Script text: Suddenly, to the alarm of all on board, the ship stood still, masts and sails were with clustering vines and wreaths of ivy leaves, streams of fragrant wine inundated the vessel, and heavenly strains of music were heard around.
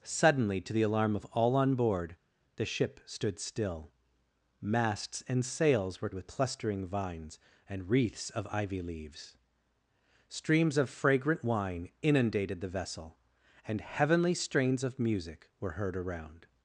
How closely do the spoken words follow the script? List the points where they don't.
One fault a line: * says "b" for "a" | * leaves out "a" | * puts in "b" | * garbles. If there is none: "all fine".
all fine